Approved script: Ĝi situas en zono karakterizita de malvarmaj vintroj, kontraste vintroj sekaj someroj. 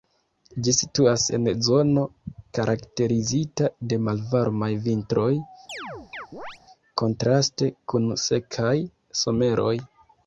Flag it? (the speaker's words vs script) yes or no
yes